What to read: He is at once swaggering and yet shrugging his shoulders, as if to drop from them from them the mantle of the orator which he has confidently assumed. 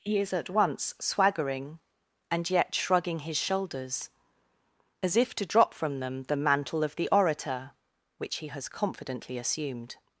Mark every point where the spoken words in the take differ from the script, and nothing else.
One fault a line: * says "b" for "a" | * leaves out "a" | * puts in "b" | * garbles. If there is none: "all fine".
* leaves out "from them"